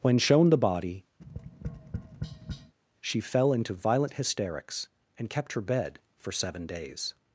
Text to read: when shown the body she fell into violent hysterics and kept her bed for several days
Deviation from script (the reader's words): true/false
true